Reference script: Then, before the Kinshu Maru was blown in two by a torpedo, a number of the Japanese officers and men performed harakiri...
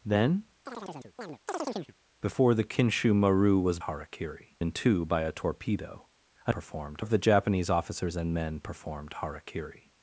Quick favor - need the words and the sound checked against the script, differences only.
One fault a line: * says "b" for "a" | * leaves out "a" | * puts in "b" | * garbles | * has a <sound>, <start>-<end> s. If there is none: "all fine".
* has a chirp, 0.7-2.0 s
* says "harakiri" for "blown"
* says "performed" for "number"